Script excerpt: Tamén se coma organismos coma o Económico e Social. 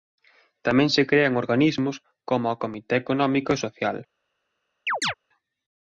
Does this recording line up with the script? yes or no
no